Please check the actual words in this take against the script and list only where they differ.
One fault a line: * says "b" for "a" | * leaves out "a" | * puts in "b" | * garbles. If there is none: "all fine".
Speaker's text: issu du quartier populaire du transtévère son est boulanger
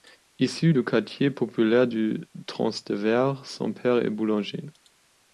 * puts in "père"